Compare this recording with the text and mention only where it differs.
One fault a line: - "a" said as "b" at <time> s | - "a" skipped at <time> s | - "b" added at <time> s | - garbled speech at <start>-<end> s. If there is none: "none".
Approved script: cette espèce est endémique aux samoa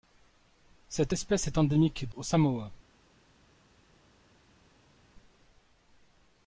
none